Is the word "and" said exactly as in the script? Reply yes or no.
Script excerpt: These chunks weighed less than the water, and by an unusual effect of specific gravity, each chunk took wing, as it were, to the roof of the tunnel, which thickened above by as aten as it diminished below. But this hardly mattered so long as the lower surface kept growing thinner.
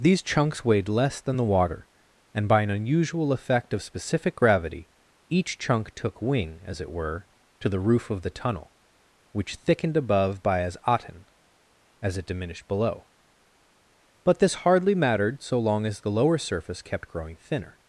yes